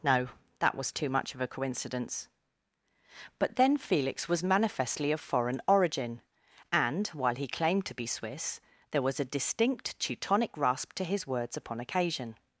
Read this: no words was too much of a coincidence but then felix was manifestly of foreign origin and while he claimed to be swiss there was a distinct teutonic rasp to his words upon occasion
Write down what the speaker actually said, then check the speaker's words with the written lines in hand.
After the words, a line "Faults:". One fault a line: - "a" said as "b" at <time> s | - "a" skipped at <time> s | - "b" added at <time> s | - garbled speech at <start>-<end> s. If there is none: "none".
no that was too much of a coincidence but then felix was manifestly of foreign origin and while he claimed to be swiss there was a distinct teutonic rasp to his words upon occasion
Faults:
- "words" said as "that" at 0.6 s